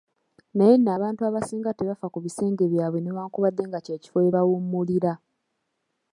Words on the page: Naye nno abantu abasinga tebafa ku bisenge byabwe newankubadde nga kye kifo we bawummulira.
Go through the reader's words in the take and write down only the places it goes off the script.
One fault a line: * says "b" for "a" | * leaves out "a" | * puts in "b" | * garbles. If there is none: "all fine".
all fine